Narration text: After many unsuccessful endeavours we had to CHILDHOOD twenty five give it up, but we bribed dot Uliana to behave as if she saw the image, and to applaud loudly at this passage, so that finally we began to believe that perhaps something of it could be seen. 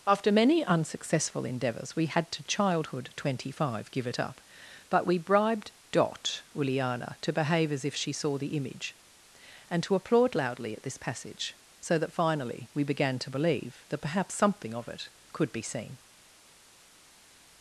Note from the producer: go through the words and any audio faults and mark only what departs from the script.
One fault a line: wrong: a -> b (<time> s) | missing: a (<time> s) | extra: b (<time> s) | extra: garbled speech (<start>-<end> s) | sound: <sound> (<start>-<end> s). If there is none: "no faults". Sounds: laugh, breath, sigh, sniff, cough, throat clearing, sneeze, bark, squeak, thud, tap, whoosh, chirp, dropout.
no faults